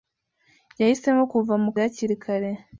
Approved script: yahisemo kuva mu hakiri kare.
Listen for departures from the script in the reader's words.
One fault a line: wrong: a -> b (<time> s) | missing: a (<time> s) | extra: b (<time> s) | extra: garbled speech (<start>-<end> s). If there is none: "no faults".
no faults